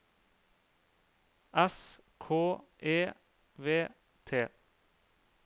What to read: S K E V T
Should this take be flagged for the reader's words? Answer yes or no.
no